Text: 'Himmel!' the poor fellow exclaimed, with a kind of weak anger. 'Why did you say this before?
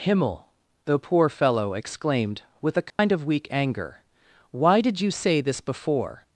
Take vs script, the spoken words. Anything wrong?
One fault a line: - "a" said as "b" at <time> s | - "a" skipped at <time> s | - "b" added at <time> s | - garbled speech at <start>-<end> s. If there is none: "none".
none